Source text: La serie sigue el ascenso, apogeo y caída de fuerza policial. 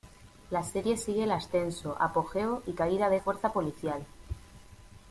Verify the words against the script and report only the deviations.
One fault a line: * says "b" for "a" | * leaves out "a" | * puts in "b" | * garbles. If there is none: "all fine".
all fine